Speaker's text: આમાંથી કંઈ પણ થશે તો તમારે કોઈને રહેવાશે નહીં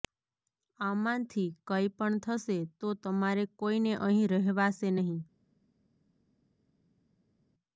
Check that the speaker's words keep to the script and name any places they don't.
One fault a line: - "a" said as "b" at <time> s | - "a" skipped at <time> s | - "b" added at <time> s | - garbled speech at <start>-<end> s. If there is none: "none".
- "અહીં" added at 4.0 s